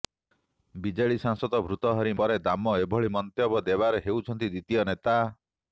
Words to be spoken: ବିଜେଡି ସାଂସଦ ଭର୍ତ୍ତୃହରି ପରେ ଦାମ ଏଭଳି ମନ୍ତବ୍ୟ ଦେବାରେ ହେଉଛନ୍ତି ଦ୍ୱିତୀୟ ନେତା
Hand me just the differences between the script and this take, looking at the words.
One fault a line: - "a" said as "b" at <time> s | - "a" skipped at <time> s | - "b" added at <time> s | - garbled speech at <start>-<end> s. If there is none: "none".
none